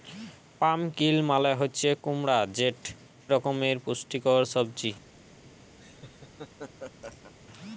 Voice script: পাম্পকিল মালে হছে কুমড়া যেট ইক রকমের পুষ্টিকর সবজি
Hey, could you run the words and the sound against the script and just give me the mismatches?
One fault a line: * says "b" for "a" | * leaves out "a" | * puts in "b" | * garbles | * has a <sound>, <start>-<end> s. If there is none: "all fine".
* leaves out "ইক"
* has a laugh, 5.8-7.3 s